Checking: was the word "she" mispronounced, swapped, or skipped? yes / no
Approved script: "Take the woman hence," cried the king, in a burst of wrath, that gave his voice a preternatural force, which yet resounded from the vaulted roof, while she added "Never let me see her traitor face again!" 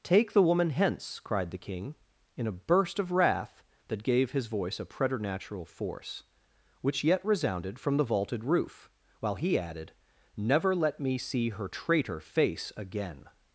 yes